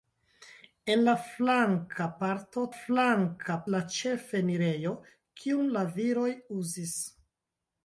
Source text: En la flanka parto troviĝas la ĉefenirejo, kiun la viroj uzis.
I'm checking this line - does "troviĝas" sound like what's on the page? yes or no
no